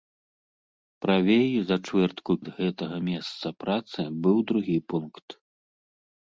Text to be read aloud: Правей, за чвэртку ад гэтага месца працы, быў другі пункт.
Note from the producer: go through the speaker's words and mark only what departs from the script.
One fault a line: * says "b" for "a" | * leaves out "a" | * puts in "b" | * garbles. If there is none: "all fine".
all fine